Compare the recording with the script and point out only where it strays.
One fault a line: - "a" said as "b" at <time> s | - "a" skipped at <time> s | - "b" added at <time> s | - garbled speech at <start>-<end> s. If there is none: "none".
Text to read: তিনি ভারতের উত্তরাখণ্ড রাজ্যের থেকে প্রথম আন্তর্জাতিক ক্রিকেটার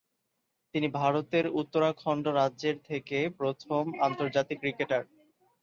none